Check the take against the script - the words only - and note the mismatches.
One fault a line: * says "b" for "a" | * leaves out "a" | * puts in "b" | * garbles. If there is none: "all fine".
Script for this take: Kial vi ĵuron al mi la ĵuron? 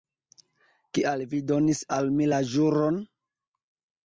* says "donis" for "ĵuron"